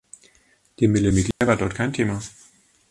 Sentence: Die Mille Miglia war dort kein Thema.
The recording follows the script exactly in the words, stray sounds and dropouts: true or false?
false